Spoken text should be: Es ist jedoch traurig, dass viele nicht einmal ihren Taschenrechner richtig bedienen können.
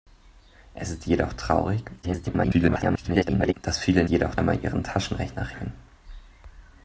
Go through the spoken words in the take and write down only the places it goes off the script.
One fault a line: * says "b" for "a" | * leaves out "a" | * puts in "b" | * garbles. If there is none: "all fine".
* garbles
* says "jedoch" for "nicht"
* leaves out "richtig bedienen"